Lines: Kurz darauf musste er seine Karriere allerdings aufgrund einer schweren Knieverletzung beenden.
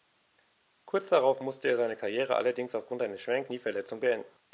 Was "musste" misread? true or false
false